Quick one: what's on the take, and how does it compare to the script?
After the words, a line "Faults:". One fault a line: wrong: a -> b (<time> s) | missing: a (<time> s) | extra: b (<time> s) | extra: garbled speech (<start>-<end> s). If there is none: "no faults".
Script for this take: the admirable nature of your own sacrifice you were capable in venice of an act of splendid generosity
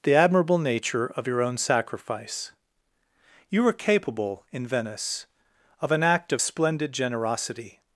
the admirable nature of your own sacrifice you were capable in venice of an act of splendid generosity
Faults:
no faults